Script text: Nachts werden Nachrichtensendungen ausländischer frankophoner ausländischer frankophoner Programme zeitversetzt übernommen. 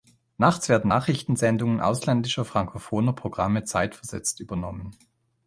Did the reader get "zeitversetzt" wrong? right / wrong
right